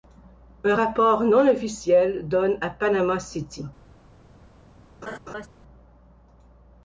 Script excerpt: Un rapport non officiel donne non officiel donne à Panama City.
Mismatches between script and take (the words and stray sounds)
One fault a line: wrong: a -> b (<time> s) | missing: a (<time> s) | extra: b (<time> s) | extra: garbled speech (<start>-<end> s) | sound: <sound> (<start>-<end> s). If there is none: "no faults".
missing: non officiel donne (2.6 s)
sound: laugh (5.0-5.5 s)